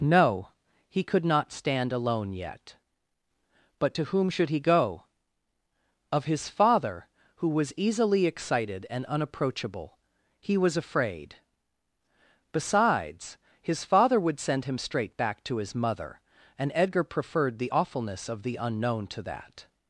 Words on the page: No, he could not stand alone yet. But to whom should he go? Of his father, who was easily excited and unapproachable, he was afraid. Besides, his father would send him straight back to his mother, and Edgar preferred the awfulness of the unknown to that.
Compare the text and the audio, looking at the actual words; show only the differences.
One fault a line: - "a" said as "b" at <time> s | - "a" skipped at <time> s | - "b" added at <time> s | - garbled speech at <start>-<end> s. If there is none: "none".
none